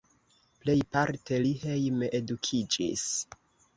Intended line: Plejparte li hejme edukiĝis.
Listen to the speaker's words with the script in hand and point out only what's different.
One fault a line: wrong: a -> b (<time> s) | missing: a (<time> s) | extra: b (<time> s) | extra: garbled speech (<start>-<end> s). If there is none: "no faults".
no faults